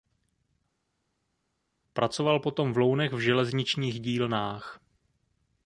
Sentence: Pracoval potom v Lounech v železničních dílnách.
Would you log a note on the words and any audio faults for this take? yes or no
no